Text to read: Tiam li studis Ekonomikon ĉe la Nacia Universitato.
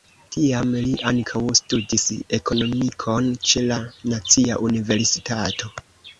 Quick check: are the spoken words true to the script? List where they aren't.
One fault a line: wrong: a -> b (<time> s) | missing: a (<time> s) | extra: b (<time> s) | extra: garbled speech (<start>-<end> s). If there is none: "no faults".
extra: ankaŭ (1.1 s)